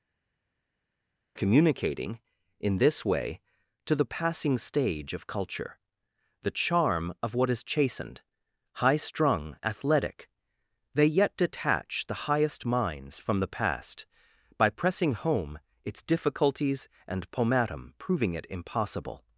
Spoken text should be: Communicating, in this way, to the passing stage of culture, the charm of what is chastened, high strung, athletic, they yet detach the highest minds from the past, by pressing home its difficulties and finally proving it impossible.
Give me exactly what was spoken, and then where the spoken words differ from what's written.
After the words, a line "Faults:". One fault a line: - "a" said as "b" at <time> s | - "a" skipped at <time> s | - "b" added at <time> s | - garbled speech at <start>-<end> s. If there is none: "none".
Communicating, in this way, to the passing stage of culture, the charm of what is chastened, high strung, athletic, they yet detach the highest minds from the past, by pressing home its difficulties and pomatum proving it impossible.
Faults:
- "finally" said as "pomatum" at 17.3 s